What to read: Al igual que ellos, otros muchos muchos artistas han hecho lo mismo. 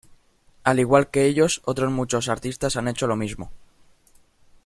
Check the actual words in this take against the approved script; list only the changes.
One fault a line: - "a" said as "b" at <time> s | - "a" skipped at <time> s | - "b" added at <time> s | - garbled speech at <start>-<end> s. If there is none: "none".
- "muchos" skipped at 2.3 s